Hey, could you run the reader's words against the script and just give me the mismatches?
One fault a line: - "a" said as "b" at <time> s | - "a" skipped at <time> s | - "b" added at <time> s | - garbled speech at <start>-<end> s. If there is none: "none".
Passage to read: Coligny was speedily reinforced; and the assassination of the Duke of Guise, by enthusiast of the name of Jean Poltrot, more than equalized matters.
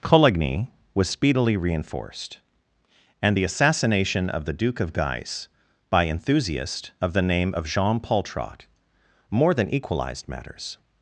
none